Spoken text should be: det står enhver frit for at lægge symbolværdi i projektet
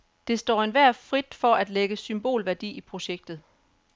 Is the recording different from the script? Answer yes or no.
no